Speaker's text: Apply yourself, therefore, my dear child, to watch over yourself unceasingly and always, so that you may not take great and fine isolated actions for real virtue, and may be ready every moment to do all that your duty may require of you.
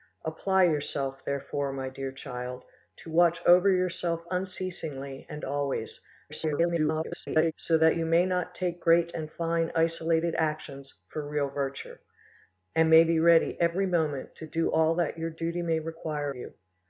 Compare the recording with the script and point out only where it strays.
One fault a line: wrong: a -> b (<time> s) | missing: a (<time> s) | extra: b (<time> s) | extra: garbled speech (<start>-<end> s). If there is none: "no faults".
extra: garbled speech (6.3-7.5 s)
missing: of (16.3 s)